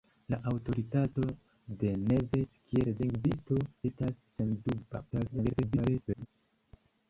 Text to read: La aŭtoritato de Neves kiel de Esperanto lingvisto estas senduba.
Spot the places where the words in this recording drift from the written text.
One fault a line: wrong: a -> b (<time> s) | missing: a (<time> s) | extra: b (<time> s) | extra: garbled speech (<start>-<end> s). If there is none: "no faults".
missing: de Esperanto (2.9 s)
extra: garbled speech (5.1-6.3 s)